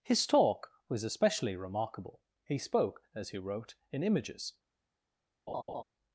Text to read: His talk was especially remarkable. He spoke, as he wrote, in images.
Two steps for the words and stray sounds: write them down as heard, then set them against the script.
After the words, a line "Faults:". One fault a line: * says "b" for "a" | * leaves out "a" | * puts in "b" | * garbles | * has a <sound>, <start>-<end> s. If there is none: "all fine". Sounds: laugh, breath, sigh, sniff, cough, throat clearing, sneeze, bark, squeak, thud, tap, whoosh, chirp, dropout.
His talk was especially remarkable. He spoke, as he wrote, in images.
Faults:
* has a laugh, 5.5-5.8 s